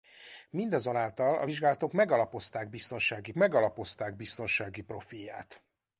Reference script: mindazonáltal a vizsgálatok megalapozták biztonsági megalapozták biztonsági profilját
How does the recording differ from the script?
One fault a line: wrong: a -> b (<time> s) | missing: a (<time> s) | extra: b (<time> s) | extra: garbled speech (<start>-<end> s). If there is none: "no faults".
no faults